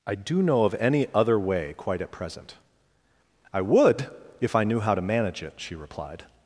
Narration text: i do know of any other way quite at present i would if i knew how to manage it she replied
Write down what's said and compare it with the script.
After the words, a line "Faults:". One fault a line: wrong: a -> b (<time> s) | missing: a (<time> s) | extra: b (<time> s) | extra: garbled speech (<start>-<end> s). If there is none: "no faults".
i do know of any other way quite at present i would if i knew how to manage it she replied
Faults:
no faults